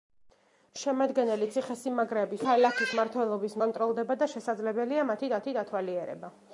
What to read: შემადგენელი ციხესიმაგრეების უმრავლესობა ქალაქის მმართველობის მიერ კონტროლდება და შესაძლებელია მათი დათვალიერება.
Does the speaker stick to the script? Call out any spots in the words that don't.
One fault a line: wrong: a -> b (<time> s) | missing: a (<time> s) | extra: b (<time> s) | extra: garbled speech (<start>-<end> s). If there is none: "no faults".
missing: უმრავლესობა (2.5 s)
missing: მიერ (3.6 s)
extra: მათი (5.4 s)